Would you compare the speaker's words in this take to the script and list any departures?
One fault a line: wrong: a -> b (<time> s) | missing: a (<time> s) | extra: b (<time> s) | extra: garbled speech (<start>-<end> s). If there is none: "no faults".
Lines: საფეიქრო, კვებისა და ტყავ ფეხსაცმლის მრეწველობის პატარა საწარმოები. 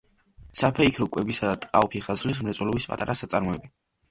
no faults